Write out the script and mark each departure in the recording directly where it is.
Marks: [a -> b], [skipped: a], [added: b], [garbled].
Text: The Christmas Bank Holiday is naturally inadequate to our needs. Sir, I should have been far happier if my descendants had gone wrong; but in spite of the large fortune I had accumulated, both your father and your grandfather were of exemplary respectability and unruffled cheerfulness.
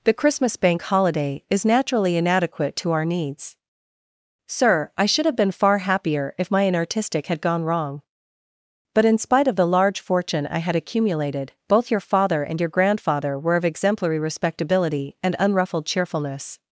The Christmas Bank Holiday is naturally inadequate to our needs. Sir, I should have been far happier if my [descendants -> inartistic] had gone wrong; but in spite of the large fortune I had accumulated, both your father and your grandfather were of exemplary respectability and unruffled cheerfulness.